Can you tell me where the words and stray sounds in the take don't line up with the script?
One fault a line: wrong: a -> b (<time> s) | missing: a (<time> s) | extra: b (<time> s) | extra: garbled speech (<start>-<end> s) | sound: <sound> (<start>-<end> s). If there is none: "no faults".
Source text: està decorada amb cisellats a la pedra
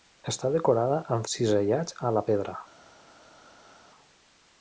no faults